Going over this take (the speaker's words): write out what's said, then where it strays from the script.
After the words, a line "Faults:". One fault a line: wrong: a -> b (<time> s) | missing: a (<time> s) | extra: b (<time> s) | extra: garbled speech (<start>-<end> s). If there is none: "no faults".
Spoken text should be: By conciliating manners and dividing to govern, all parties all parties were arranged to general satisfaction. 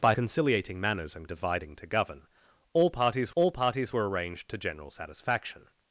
By conciliating manners and dividing to govern, all parties all parties were arranged to general satisfaction.
Faults:
no faults